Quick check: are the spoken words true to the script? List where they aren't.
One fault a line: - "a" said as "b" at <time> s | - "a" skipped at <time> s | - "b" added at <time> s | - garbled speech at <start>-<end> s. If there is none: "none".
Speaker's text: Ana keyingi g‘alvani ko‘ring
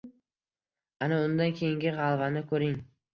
- "undan" added at 1.2 s